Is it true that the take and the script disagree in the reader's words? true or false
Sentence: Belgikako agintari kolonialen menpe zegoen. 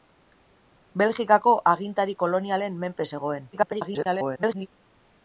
true